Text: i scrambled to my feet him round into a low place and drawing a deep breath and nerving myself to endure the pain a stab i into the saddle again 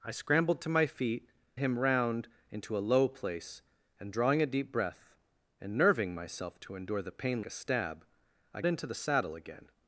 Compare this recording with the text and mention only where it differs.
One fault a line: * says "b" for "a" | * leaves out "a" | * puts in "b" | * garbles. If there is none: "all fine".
all fine